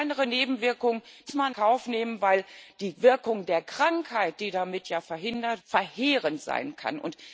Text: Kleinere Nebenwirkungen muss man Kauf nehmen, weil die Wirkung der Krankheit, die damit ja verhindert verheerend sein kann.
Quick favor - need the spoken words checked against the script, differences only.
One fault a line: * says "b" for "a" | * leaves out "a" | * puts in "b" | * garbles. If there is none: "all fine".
all fine